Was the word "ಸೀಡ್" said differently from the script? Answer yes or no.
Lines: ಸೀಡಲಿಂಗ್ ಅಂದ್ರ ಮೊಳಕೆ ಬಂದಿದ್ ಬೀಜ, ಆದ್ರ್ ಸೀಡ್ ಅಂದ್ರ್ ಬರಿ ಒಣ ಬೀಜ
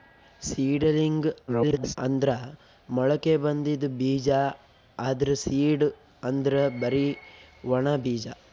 no